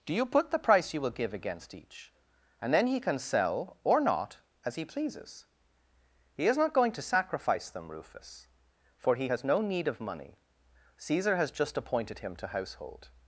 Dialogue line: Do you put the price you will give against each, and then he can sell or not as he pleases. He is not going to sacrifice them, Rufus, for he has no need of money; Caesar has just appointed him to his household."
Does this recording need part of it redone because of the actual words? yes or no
yes